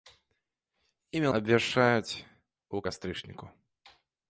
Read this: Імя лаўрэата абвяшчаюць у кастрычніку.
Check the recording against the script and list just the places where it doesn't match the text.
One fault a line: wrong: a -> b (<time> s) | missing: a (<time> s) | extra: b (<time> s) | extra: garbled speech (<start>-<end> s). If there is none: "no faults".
missing: лаўрэата (1.3 s)